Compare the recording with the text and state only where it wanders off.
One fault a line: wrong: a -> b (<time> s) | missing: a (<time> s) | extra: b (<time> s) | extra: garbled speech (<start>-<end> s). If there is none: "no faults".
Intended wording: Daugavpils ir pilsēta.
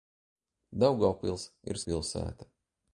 no faults